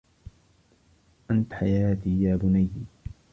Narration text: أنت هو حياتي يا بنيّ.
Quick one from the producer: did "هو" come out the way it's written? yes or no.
no